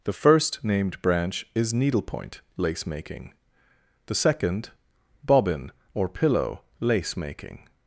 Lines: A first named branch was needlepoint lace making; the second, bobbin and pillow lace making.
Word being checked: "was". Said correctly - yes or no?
no